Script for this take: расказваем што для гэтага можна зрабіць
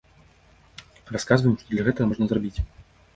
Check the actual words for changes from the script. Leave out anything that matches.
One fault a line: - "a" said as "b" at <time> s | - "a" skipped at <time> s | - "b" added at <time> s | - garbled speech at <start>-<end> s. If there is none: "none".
none